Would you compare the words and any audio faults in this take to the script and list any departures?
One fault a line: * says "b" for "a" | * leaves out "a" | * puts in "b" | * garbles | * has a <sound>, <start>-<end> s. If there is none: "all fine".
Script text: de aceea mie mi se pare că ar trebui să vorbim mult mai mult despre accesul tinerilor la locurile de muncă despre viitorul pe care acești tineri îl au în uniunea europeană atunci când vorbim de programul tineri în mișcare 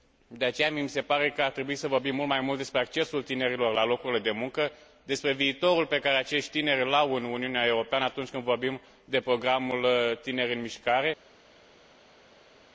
all fine